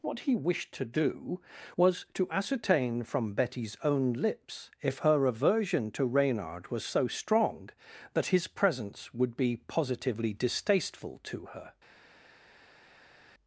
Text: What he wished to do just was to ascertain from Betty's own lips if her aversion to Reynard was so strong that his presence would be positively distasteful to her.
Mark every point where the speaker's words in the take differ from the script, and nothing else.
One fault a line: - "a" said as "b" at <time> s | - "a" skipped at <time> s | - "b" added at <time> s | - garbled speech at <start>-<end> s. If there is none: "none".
- "just" skipped at 1.4 s